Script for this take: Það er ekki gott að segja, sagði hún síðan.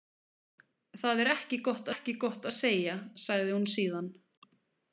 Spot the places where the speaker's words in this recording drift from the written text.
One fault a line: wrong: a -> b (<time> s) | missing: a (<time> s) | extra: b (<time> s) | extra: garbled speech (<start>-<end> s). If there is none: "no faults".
extra: ekki gott (1.9 s)